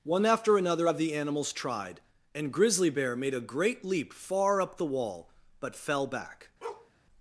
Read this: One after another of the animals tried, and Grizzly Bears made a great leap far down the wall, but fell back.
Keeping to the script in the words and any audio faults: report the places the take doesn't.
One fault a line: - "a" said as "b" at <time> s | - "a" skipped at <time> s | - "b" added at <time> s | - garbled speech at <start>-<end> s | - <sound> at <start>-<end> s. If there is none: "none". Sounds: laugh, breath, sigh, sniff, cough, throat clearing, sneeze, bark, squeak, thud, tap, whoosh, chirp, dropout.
- "Bears" said as "Bear" at 2.9 s
- "down" said as "up" at 4.6 s
- bark at 6.6-6.9 s